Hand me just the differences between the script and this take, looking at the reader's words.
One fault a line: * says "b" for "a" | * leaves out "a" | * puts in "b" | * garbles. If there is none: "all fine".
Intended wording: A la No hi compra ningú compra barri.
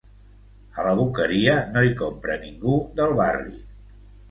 * puts in "Boqueria"
* says "del" for "compra"